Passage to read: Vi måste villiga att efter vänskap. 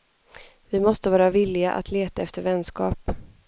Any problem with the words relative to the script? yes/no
yes